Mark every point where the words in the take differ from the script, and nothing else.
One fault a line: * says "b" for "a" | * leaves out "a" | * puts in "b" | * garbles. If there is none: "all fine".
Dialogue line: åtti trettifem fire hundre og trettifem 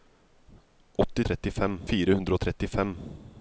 all fine